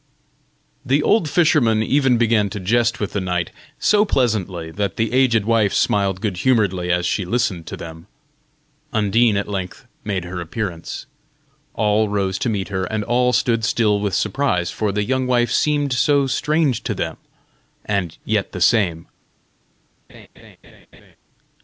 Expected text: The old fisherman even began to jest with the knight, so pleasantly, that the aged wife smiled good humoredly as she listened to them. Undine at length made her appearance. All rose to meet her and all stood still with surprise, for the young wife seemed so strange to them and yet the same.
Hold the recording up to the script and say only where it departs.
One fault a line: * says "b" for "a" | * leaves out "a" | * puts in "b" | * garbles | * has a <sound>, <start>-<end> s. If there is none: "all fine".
* has a laugh, 20.1-21.2 s